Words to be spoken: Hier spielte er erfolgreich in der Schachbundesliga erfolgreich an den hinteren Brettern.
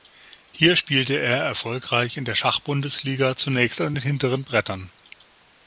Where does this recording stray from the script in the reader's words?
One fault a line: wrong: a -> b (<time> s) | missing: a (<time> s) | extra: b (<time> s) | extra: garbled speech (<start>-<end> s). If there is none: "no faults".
wrong: erfolgreich -> zunächst (3.4 s)